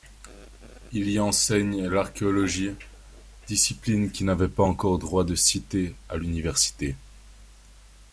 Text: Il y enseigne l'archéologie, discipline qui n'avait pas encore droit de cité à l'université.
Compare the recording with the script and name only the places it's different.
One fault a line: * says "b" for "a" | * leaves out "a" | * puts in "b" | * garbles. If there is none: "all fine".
all fine